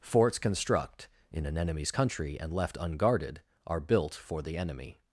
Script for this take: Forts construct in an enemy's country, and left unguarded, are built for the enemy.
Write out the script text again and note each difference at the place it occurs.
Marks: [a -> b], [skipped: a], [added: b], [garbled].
Forts construct in an enemy's country, and left unguarded, are built for the enemy.